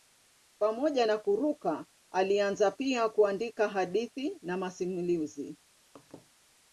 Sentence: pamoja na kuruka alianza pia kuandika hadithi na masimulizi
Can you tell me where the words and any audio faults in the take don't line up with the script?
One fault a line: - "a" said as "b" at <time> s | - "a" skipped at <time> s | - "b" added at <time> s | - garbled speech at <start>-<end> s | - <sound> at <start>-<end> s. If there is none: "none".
- laugh at 6.0-6.3 s